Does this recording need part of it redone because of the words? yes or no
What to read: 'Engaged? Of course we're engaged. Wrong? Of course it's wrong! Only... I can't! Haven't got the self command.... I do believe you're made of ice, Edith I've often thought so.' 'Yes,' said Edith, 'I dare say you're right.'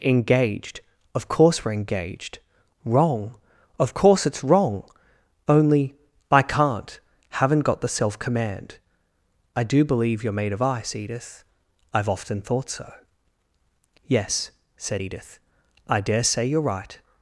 no